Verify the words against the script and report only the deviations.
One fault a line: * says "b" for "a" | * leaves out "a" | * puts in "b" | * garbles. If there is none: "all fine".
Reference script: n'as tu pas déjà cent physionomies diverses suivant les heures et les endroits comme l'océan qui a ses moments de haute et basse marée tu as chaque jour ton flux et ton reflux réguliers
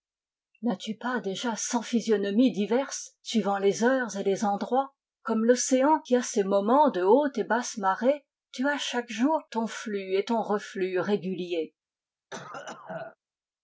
all fine